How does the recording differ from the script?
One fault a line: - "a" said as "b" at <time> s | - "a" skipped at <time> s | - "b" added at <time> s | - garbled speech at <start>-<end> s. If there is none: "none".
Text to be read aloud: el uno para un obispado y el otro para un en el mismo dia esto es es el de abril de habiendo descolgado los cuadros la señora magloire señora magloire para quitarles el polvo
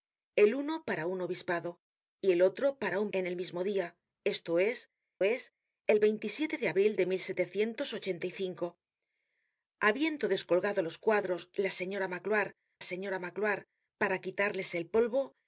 none